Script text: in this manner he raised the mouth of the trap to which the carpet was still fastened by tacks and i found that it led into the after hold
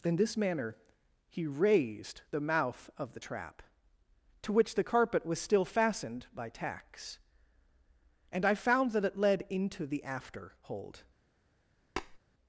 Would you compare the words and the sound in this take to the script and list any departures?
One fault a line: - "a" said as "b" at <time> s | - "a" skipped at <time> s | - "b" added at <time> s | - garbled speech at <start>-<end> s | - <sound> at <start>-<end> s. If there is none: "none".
- tap at 12.0-12.2 s